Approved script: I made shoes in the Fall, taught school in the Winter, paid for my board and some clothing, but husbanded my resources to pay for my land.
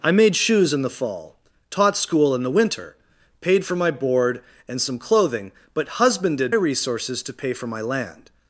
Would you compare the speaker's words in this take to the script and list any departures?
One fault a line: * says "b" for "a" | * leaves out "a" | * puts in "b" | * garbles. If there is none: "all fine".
* leaves out "my"